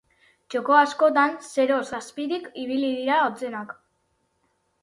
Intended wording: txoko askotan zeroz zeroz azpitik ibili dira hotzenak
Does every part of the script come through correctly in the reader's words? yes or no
no